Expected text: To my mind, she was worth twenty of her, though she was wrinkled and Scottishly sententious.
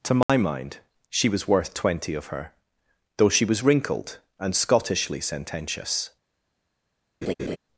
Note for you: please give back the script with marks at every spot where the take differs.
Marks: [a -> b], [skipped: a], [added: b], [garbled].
To my mind, she was worth twenty of her, though she was wrinkled and Scottishly sententious.